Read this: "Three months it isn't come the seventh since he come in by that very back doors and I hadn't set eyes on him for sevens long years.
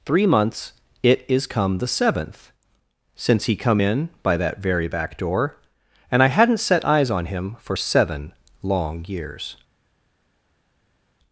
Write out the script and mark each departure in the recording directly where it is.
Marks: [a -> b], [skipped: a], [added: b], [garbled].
"Three months it [isn't -> is] come the seventh since he come in by that very back [doors -> door] and I hadn't set eyes on him for [sevens -> seven] long years.